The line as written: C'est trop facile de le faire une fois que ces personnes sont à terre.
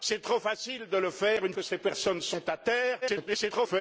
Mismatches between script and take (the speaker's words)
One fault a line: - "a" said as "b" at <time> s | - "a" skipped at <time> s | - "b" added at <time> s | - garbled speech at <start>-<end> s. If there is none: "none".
- "fois" skipped at 1.5 s
- garbled speech at 3.0-3.8 s